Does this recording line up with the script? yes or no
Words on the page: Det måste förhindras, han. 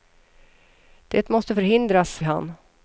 yes